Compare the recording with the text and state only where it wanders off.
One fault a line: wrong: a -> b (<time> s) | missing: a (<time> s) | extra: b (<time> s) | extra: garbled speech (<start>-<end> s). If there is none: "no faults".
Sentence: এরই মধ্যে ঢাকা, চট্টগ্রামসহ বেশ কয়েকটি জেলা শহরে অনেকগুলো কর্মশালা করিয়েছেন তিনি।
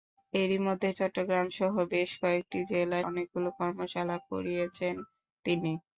missing: ঢাকা (0.9 s)
missing: শহরে (3.0 s)